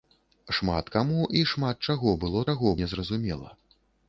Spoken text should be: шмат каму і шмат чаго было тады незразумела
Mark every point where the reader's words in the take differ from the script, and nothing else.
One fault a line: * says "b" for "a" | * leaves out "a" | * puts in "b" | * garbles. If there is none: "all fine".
* says "чаго" for "тады"